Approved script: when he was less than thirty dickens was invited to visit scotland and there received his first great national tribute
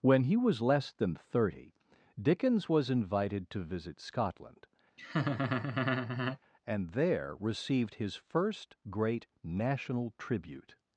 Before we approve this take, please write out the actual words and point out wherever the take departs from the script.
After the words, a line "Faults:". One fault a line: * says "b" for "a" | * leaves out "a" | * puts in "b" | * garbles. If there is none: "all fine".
when he was less than thirty dickens was invited to visit scotland and there received his first great national tribute
Faults:
all fine